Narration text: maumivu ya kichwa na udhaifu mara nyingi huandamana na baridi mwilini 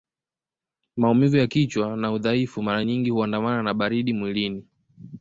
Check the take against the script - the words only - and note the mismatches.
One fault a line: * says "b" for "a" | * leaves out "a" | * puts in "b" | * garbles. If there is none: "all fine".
all fine